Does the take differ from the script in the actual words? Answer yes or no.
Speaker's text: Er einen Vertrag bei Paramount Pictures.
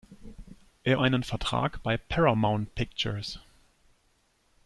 no